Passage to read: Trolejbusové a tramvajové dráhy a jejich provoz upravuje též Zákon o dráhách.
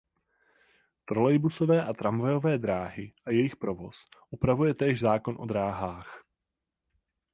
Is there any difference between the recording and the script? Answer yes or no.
no